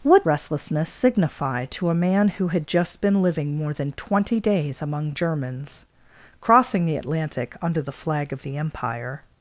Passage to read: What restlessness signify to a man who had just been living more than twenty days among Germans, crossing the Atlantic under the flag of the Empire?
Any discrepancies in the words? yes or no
no